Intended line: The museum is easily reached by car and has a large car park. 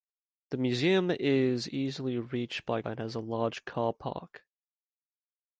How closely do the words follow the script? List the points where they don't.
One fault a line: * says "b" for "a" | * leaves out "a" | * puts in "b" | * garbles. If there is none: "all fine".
* leaves out "car"